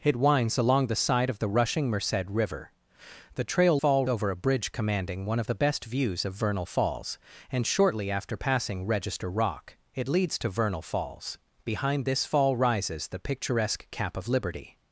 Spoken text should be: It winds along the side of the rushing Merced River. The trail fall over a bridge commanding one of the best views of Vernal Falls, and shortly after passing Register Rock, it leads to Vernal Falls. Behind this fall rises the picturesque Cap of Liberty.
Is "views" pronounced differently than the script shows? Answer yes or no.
no